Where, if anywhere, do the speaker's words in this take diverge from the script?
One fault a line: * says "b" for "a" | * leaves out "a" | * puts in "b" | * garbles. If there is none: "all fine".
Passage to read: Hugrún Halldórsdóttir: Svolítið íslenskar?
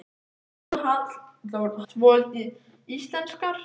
* leaves out "Halldórsdóttir"